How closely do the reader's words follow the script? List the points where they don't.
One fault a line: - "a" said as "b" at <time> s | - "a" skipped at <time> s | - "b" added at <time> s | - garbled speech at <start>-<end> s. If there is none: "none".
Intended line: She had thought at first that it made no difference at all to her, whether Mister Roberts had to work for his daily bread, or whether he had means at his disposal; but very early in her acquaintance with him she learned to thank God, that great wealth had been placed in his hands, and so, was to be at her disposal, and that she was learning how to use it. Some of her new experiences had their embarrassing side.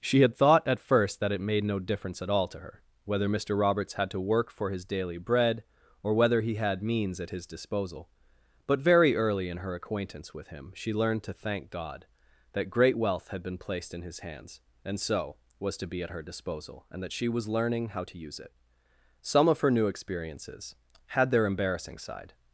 none